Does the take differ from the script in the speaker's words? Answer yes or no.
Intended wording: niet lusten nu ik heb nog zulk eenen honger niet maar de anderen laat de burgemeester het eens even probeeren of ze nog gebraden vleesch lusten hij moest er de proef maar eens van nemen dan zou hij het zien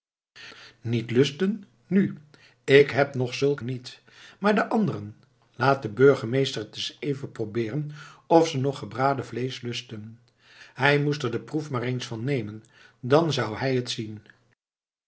yes